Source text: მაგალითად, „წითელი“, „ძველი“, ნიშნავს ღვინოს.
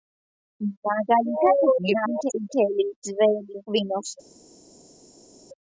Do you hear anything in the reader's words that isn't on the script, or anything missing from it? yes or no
yes